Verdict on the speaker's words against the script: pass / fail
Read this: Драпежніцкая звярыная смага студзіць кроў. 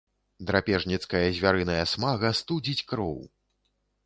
pass